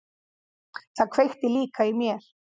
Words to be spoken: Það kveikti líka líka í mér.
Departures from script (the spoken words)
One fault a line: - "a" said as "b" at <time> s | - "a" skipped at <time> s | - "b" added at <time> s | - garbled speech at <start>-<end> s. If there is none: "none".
- "líka" skipped at 1.9 s